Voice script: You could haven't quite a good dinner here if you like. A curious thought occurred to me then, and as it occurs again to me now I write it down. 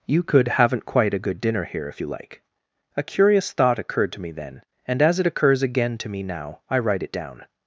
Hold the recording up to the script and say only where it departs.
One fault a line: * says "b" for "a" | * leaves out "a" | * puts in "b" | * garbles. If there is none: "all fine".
all fine